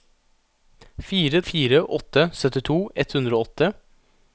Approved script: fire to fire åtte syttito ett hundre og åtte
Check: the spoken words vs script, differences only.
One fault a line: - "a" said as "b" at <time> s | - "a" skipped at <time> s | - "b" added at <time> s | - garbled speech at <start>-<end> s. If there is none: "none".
- "to" skipped at 1.4 s